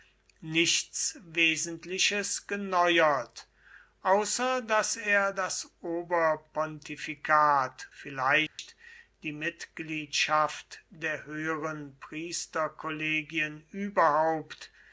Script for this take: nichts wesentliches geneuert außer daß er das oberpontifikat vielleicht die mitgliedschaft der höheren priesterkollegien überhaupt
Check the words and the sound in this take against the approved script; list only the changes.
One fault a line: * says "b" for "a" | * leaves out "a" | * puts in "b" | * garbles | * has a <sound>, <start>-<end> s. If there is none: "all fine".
* has a dropout, 8.5-8.6 s